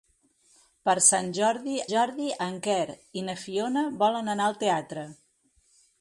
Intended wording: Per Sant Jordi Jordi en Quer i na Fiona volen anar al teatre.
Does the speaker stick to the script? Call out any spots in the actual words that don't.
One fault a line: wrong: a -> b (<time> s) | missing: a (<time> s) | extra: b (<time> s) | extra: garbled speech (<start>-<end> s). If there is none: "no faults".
no faults